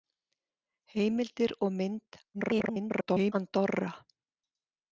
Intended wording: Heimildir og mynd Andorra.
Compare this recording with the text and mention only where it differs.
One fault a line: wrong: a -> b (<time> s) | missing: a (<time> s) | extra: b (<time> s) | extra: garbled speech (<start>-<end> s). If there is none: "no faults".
extra: garbled speech (2.3-3.3 s)